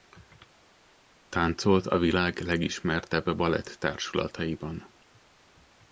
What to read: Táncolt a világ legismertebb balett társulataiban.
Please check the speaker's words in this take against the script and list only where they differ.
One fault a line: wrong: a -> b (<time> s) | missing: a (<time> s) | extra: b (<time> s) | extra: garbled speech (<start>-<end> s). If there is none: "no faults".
no faults